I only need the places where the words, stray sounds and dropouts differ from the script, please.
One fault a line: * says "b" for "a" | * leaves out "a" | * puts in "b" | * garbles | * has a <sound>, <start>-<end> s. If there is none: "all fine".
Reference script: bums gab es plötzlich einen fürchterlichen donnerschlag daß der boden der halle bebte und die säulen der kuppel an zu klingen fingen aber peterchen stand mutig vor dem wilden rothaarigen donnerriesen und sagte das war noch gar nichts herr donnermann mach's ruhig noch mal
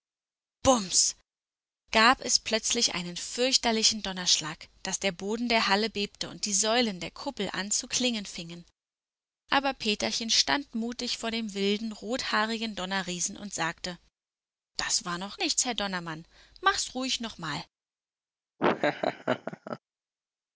* leaves out "gar"
* has a laugh, 18.6-19.8 s